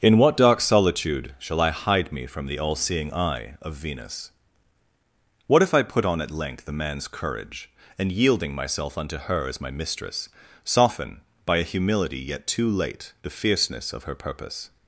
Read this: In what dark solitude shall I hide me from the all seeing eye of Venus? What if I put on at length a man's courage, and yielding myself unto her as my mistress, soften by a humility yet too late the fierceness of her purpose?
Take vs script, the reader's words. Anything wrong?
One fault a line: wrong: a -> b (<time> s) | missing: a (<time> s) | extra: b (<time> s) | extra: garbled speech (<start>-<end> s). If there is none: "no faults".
no faults